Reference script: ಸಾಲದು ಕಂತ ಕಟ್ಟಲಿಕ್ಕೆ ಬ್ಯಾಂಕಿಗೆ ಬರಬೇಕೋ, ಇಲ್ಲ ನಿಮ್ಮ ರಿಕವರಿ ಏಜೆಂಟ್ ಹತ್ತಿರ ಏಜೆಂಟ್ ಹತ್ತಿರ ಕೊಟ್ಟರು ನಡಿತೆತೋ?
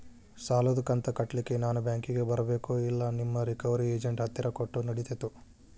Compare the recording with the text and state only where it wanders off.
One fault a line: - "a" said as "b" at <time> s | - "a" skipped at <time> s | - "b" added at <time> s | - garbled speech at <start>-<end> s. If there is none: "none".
- "ನಾನ" added at 1.6 s
- "ಏಜೆಂಟ್ ಹತ್ತಿರ" skipped at 4.5 s